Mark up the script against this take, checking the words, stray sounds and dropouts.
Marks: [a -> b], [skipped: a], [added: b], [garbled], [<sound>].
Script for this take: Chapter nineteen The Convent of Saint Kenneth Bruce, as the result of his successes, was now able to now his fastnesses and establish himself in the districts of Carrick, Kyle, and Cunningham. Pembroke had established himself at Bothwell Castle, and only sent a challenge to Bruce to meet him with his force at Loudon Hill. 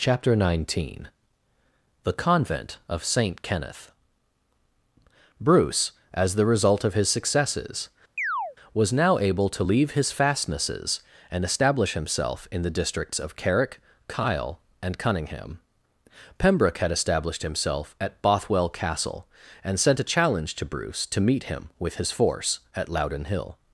Chapter nineteen The Convent of Saint Kenneth Bruce, as the result of his successes, [chirp] was now able to [now -> leave] his fastnesses and establish himself in the districts of Carrick, Kyle, and Cunningham. Pembroke had established himself at Bothwell Castle, and [skipped: only] sent a challenge to Bruce to meet him with his force at Loudon Hill.